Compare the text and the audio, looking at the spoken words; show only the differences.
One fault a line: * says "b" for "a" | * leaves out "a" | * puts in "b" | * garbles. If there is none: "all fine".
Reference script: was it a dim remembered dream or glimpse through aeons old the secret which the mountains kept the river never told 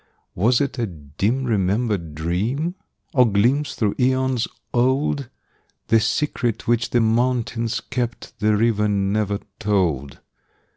all fine